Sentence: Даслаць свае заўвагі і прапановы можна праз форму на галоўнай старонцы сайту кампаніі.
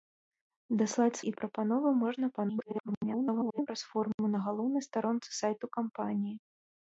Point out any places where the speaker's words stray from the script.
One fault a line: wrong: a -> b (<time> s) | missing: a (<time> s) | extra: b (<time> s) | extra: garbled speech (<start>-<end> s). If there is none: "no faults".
missing: свае заўвагі (1.2 s)
extra: garbled speech (2.3-3.7 s)